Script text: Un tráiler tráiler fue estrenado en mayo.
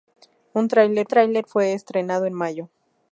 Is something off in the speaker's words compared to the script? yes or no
no